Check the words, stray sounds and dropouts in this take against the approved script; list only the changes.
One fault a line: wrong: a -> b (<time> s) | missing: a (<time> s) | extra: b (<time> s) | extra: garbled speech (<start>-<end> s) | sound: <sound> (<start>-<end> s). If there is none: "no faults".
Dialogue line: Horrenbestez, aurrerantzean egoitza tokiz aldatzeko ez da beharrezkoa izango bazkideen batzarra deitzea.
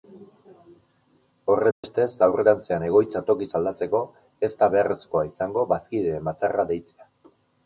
sound: dropout (1.7-1.8 s)